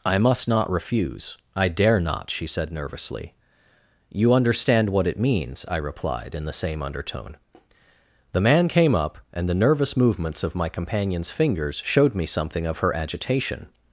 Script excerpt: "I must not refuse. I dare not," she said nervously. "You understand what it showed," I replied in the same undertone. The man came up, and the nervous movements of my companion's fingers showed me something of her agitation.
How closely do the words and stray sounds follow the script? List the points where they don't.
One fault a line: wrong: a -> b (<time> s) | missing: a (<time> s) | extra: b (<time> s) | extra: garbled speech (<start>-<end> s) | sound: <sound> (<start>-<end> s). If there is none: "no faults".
wrong: showed -> means (5.2 s)